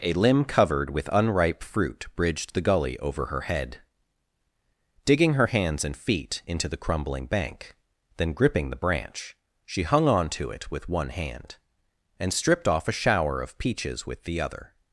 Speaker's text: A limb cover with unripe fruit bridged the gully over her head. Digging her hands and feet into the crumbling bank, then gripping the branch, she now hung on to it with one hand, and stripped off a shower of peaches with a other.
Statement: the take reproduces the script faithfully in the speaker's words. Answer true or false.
false